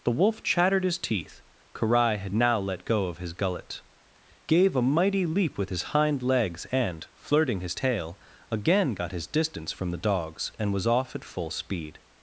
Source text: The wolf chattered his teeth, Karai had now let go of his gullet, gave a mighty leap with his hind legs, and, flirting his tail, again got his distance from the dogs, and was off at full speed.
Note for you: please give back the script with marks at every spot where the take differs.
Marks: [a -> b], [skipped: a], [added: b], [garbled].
The wolf chattered his teeth, Karai had now let go of his gullet, gave a mighty leap with his hind legs, and, flirting his tail, again got his distance from the dogs, and was off at full speed.